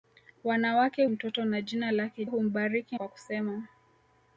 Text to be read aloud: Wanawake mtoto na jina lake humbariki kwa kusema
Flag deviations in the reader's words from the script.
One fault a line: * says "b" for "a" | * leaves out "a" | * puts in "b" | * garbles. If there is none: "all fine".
all fine